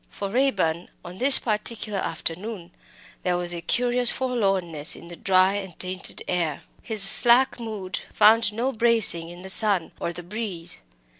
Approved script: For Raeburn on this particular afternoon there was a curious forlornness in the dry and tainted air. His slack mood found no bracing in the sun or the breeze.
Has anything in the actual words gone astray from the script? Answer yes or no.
no